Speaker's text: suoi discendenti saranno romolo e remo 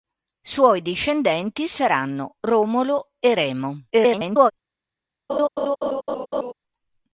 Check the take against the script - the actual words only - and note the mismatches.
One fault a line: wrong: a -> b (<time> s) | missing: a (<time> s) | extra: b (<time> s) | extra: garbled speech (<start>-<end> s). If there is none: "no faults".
extra: garbled speech (3.9-4.5 s)